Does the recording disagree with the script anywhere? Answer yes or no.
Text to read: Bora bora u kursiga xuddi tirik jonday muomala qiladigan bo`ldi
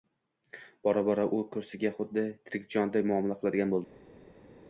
no